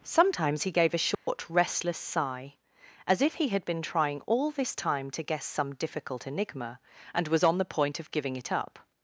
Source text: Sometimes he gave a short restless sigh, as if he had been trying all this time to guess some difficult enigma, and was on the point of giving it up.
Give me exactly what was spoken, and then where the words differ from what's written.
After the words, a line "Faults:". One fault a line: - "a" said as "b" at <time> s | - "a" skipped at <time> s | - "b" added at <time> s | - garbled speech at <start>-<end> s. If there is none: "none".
Sometimes he gave a short restless sigh, as if he had been trying all this time to guess some difficult enigma, and was on the point of giving it up.
Faults:
none